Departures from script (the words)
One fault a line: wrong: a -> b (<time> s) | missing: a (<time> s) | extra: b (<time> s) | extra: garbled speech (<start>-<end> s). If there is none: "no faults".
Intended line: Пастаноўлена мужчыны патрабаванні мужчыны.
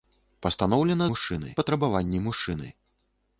no faults